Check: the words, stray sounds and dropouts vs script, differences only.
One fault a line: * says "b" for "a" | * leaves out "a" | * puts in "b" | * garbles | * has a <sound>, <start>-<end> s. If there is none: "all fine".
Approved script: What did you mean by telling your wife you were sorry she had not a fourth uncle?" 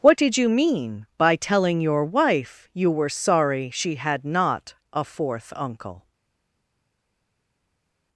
all fine